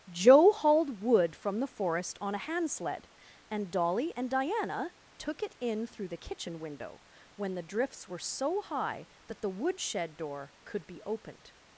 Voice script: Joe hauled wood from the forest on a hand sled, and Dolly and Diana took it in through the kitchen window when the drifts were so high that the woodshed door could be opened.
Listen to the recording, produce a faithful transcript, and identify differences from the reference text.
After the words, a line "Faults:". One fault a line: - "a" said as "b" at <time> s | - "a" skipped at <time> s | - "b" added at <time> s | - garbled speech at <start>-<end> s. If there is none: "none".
Joe hauled wood from the forest on a hand sled, and Dolly and Diana took it in through the kitchen window when the drifts were so high that the woodshed door could be opened.
Faults:
none